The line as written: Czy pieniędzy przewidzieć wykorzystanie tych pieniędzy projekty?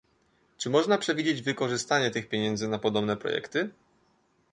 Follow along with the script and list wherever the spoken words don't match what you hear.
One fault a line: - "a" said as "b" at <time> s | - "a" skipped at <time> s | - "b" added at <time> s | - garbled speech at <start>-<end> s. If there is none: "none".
- "pieniędzy" said as "można" at 0.7 s
- "na podobne" added at 2.7 s